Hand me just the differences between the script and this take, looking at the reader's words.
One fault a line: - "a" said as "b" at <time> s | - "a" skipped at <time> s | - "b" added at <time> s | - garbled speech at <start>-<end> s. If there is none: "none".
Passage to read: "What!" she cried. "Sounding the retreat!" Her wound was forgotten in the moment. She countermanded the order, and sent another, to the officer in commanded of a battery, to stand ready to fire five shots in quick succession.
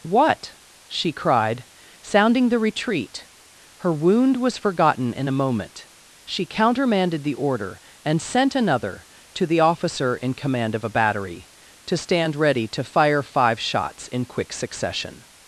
- "the" said as "a" at 5.3 s
- "commanded" said as "command" at 10.3 s